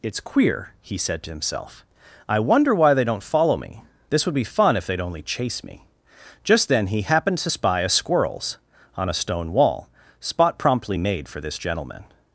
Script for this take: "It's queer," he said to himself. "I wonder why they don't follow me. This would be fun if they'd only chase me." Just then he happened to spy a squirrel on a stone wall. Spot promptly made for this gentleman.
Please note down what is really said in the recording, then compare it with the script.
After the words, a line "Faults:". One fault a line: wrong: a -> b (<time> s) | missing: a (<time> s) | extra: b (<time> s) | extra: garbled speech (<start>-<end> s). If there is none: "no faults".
"It's queer," he said to himself. "I wonder why they don't follow me. This would be fun if they'd only chase me." Just then he happened to spy a squirrels on a stone wall. Spot promptly made for this gentleman.
Faults:
wrong: squirrel -> squirrels (7.9 s)